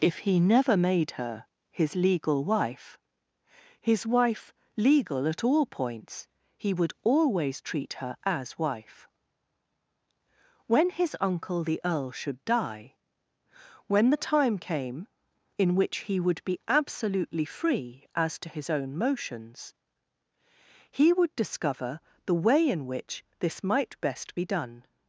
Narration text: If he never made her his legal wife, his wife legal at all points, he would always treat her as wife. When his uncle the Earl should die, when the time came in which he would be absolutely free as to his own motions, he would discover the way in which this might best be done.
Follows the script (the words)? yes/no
yes